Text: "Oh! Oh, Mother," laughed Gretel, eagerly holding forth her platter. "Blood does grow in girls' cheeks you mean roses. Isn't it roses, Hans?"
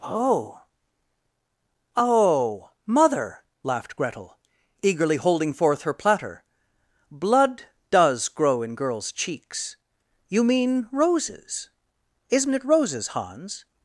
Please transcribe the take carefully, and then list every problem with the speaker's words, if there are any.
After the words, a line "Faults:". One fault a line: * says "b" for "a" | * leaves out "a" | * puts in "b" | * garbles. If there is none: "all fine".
"Oh! Oh, Mother," laughed Gretel, eagerly holding forth her platter. "Blood does grow in girls' cheeks you mean roses. Isn't it roses, Hans?"
Faults:
all fine